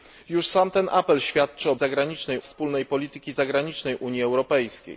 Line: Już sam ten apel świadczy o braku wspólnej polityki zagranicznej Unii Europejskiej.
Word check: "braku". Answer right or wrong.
wrong